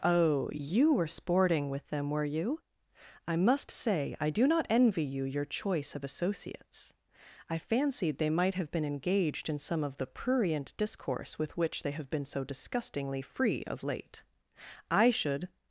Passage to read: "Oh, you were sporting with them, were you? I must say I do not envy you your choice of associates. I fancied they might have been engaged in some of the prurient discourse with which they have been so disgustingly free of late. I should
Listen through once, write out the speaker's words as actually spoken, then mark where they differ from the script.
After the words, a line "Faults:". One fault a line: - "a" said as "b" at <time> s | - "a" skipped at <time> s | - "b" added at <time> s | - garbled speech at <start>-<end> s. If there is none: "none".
"Oh, you were sporting with them, were you? I must say I do not envy you your choice of associates. I fancied they might have been engaged in some of the prurient discourse with which they have been so disgustingly free of late. I should
Faults:
none